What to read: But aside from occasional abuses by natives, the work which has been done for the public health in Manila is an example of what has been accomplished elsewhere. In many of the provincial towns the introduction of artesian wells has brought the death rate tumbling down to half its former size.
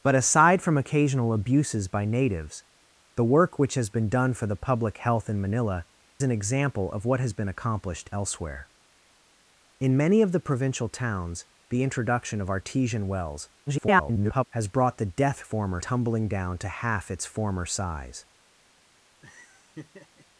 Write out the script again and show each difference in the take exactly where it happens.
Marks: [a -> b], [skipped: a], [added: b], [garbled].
But aside from occasional abuses by natives, the work which has been done for the public health in Manila [skipped: is] an example of what has been accomplished elsewhere. In many of the provincial towns the introduction of artesian wells [garbled] has brought the death [rate -> former] tumbling down to half its former size.